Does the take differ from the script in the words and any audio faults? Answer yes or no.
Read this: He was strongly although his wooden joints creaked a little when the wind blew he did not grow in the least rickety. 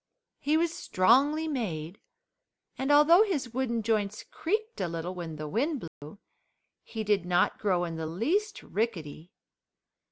yes